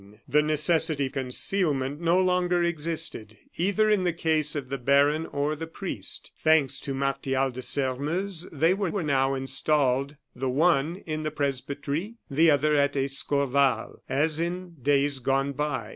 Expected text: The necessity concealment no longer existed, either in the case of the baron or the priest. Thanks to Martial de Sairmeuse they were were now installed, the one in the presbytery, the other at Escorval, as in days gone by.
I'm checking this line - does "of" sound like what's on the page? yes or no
yes